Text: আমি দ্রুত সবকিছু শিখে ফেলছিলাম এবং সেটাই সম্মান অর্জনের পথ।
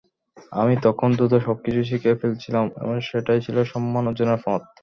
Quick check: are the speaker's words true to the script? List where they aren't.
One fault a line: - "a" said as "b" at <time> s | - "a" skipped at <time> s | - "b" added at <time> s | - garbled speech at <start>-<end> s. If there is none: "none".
- "তখন" added at 0.8 s
- "ছিল" added at 3.5 s